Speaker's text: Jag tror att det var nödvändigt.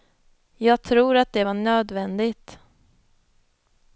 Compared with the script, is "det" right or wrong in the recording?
right